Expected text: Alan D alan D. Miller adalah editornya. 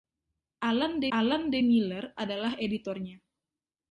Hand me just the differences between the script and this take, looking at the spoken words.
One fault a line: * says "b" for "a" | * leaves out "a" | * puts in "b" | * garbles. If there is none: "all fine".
all fine